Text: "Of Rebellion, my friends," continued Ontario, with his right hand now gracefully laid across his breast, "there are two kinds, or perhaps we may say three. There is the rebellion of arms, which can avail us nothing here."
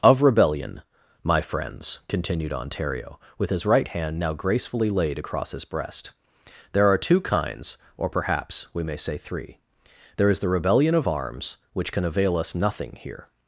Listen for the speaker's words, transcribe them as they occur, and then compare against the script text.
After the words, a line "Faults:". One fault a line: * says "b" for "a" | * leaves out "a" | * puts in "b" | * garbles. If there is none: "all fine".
"Of Rebellion, my friends," continued Ontario, with his right hand now gracefully laid across his breast, "there are two kinds, or perhaps we may say three. There is the rebellion of arms, which can avail us nothing here."
Faults:
all fine